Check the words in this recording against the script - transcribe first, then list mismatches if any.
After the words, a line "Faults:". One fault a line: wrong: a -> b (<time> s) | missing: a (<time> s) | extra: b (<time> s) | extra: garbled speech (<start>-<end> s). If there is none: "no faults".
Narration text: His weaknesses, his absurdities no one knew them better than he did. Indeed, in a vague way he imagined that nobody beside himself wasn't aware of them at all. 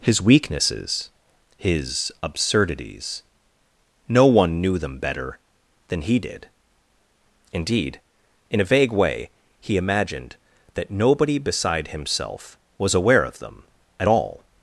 His weaknesses, his absurdities no one knew them better than he did. Indeed, in a vague way he imagined that nobody beside himself was aware of them at all.
Faults:
wrong: wasn't -> was (12.8 s)